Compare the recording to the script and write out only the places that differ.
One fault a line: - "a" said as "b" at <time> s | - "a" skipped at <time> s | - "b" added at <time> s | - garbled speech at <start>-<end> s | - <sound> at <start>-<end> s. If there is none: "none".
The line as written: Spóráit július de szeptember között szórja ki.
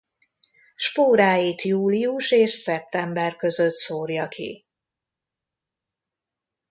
- "de" said as "és" at 2.3 s